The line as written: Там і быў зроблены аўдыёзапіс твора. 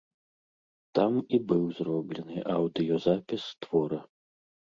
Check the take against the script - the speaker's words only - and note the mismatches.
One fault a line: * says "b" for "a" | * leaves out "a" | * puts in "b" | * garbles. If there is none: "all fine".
all fine